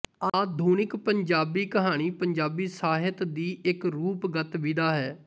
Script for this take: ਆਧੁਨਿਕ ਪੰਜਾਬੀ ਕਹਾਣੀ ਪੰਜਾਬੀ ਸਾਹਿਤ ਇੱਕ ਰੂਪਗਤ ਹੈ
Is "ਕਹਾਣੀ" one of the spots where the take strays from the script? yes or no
no